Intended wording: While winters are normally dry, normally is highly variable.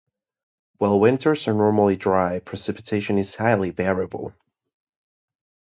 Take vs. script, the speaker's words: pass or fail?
fail